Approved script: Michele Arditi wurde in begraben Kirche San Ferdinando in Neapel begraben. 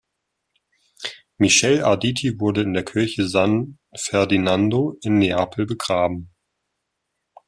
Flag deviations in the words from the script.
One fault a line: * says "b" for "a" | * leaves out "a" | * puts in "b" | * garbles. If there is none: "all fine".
* says "der" for "begraben"